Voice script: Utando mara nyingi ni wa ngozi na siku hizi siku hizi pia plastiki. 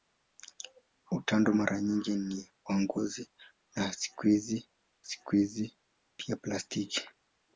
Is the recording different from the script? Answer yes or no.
no